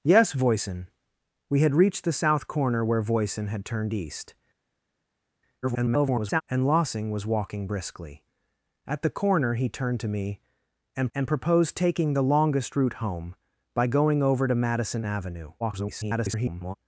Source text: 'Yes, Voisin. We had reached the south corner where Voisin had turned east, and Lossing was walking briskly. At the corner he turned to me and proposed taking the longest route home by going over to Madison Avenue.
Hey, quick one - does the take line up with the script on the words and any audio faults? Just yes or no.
no